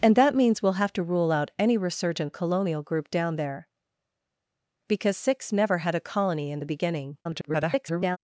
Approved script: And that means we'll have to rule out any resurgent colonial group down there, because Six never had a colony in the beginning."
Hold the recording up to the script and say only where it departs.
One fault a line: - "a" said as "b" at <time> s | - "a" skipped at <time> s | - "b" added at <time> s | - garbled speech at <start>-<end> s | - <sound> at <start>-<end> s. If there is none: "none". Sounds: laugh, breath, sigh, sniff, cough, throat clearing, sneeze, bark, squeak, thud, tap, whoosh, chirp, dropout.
- garbled speech at 7.2-8.2 s